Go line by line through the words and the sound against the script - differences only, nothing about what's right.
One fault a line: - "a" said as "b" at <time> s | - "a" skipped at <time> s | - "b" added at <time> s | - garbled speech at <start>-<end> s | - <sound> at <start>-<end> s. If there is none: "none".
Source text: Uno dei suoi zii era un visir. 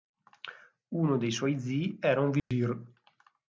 - dropout at 2.4-2.5 s